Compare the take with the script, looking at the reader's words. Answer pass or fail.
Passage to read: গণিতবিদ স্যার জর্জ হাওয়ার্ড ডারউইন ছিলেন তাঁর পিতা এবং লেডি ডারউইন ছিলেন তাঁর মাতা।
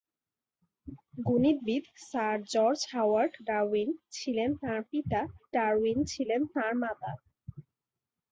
fail